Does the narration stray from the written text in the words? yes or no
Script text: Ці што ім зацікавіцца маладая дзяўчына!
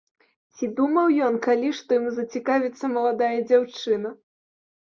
yes